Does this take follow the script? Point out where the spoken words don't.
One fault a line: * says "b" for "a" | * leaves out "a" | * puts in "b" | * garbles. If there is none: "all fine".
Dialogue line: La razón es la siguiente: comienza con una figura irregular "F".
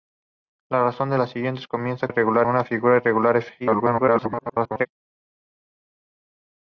* says "irregular" for "con"
* garbles